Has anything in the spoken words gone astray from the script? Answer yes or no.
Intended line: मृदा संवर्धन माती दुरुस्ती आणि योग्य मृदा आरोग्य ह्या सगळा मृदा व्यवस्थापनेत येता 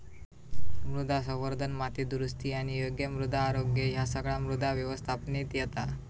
no